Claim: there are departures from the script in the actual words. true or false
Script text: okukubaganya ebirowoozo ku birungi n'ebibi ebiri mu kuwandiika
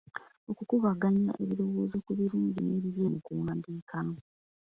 true